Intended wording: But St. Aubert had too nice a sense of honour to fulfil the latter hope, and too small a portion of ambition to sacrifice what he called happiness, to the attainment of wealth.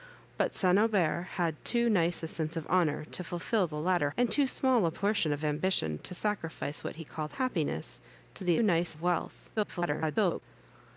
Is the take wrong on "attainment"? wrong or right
wrong